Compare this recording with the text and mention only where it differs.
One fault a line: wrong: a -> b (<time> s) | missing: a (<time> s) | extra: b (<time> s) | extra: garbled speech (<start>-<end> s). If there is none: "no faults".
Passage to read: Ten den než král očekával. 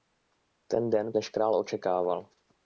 no faults